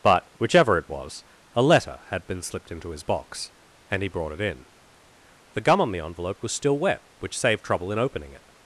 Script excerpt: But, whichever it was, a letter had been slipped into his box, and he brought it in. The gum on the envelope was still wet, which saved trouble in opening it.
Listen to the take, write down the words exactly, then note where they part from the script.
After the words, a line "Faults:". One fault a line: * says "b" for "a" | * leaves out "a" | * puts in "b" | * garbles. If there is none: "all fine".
But, whichever it was, a letter had been slipped into his box, and he brought it in. The gum on the envelope was still wet, which saved trouble in opening it.
Faults:
all fine